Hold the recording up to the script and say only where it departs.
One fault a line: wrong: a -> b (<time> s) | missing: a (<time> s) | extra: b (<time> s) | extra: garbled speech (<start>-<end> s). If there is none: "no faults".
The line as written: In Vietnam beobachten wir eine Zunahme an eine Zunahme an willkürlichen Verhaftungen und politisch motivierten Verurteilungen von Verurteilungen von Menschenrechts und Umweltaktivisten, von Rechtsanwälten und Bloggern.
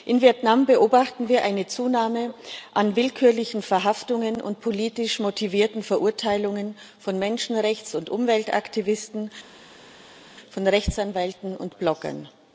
missing: eine Zunahme an (2.9 s)
missing: Verurteilungen von (7.2 s)